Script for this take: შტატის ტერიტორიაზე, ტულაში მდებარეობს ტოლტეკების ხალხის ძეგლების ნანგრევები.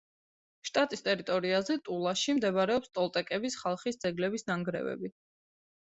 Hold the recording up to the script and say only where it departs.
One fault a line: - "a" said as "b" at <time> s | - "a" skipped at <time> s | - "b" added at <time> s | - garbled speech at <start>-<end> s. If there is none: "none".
none